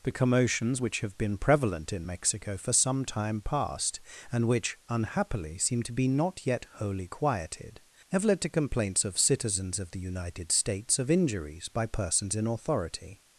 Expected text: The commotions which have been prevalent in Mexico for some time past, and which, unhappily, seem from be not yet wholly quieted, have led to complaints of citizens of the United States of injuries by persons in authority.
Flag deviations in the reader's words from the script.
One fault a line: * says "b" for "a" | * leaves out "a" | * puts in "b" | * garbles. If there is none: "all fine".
* says "to" for "from"